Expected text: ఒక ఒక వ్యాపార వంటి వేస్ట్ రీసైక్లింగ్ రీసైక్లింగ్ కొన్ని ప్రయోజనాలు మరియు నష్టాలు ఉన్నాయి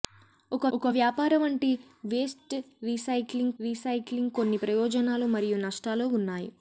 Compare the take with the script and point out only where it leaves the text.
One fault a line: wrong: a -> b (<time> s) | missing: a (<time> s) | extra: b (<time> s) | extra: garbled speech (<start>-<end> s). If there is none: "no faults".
no faults